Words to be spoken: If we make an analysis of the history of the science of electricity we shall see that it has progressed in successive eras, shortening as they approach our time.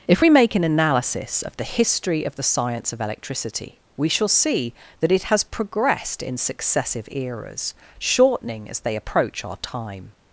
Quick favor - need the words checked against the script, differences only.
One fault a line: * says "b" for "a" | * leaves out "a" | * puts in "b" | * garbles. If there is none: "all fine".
all fine